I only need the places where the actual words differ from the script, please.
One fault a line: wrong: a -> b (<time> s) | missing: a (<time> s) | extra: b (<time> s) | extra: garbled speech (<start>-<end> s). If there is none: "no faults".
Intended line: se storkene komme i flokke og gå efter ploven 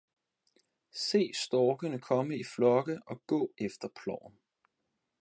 no faults